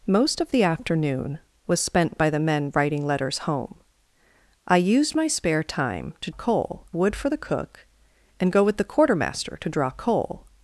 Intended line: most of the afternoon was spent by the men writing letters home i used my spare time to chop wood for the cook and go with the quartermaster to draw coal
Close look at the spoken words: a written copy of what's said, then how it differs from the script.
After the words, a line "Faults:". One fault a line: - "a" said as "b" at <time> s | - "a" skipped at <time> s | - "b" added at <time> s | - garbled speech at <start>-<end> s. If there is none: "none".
most of the afternoon was spent by the men writing letters home i used my spare time to coal wood for the cook and go with the quartermaster to draw coal
Faults:
- "chop" said as "coal" at 6.3 s